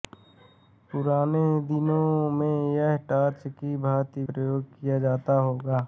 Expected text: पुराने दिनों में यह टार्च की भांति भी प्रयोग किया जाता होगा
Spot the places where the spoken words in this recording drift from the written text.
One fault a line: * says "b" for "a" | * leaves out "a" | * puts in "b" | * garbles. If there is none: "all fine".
* leaves out "भी"